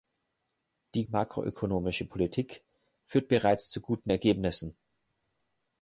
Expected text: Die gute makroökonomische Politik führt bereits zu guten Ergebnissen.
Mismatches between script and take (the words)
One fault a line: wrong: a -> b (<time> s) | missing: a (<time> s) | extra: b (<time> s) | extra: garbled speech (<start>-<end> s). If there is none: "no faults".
missing: gute (1.0 s)